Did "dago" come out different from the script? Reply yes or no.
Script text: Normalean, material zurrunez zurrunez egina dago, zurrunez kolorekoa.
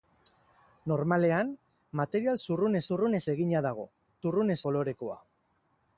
no